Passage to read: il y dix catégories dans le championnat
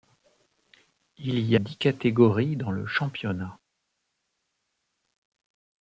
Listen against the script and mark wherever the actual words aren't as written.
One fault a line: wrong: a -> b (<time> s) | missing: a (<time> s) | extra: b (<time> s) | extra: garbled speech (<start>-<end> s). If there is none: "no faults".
no faults